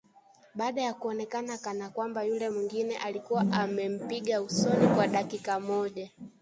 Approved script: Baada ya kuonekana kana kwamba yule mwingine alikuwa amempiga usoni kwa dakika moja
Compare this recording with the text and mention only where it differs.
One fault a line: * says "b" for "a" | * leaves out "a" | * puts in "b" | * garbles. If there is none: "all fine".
all fine